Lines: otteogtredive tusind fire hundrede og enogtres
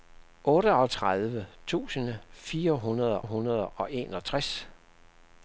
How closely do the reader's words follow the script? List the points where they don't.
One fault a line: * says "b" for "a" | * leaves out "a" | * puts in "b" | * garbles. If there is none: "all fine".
* puts in "hundrede"